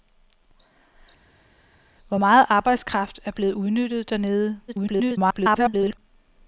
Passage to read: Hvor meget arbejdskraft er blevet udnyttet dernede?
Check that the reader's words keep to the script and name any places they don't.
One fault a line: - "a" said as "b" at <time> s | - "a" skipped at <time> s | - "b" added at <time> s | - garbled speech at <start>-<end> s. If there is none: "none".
- garbled speech at 4.7-6.0 s